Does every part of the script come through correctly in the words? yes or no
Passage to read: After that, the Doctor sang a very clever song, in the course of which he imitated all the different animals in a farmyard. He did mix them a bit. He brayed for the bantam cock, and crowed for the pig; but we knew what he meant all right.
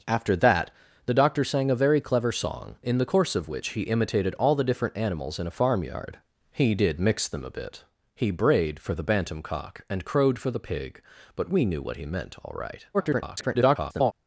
no